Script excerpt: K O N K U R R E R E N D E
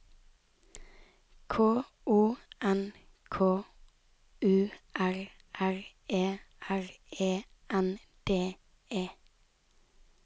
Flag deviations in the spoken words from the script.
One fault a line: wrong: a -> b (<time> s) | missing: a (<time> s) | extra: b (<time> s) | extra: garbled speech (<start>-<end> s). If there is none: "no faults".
no faults